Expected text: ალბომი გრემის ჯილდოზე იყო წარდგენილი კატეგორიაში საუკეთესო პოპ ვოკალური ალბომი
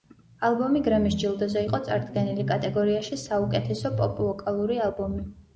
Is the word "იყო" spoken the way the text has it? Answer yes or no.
yes